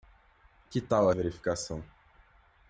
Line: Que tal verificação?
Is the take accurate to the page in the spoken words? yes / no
yes